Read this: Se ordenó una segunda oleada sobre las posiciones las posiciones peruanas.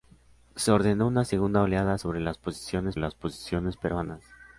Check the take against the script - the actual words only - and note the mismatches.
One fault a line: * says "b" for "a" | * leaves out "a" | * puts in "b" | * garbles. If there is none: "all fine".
all fine